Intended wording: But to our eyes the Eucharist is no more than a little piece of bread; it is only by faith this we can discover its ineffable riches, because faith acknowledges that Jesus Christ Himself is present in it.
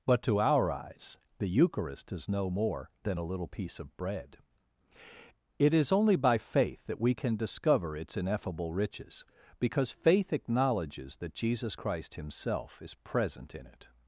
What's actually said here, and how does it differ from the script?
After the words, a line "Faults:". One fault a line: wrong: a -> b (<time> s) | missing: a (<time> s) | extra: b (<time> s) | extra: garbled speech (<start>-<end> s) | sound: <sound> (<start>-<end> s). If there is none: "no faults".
But to our eyes the Eucharist is no more than a little piece of bread; it is only by faith that we can discover its ineffable riches, because faith acknowledges that Jesus Christ Himself is present in it.
Faults:
wrong: this -> that (6.8 s)